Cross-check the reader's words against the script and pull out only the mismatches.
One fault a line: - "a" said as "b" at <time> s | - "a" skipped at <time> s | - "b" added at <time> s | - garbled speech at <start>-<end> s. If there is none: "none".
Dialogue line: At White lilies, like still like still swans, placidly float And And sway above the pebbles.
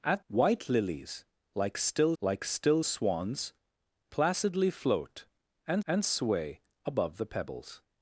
none